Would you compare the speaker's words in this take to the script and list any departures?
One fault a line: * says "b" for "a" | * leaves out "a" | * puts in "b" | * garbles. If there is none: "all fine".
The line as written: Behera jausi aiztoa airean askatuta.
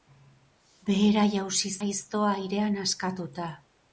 all fine